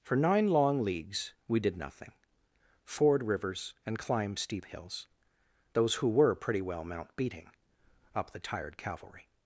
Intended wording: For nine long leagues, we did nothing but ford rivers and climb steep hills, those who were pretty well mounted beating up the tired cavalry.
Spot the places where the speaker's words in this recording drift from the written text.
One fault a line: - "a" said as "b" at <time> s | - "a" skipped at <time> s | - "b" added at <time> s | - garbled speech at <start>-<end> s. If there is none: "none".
- "but" skipped at 2.1 s
- "mounted" said as "mount" at 6.8 s